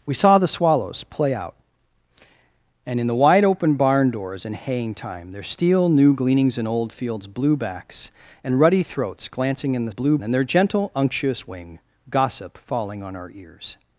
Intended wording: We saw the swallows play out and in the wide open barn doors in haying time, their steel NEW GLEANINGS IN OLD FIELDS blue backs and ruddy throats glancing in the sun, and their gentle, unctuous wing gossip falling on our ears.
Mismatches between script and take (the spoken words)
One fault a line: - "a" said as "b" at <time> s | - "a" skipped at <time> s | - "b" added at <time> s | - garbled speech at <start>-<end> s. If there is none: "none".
- "sun" said as "blue" at 9.9 s